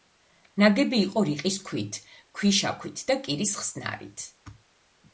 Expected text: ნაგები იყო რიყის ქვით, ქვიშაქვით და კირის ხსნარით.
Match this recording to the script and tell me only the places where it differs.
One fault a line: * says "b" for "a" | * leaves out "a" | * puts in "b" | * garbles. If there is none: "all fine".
all fine